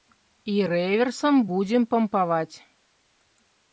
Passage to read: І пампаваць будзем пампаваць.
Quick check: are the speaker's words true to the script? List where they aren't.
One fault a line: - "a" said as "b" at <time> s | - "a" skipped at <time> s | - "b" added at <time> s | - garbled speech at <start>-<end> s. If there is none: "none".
- "пампаваць" said as "рэверсам" at 0.7 s